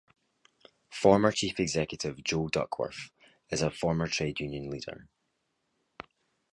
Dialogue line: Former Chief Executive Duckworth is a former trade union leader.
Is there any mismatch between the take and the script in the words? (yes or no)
yes